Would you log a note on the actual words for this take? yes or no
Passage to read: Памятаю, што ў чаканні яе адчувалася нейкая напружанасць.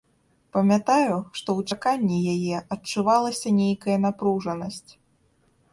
no